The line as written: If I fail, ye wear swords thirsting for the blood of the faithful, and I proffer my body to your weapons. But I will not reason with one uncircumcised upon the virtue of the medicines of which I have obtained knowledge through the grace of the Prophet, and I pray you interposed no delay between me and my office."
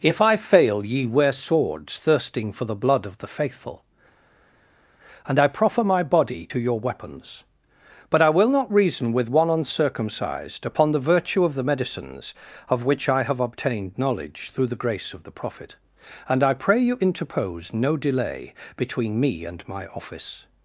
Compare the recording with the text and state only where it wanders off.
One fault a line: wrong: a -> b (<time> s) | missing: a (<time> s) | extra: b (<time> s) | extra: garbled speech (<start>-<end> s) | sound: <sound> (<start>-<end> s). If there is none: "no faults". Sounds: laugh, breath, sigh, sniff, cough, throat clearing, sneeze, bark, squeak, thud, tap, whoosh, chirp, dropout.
wrong: interposed -> interpose (17.0 s)